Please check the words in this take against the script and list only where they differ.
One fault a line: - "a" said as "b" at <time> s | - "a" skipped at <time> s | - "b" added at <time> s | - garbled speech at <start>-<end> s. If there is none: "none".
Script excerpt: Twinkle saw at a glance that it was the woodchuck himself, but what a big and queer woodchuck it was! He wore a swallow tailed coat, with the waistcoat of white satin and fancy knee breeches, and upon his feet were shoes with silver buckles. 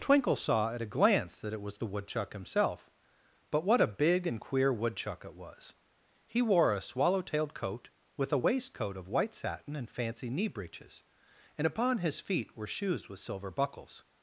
- "the" said as "a" at 8.3 s